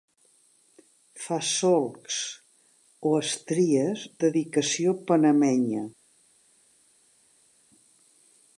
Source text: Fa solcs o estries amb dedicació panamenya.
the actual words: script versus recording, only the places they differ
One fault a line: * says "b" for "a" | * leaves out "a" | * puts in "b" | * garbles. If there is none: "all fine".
* leaves out "amb"